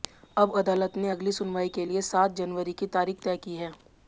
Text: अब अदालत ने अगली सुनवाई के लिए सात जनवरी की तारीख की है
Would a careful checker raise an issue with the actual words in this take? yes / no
yes